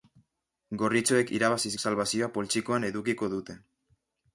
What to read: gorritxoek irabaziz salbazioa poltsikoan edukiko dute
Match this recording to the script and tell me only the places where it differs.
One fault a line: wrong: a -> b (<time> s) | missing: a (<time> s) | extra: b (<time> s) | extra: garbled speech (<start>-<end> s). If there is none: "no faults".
no faults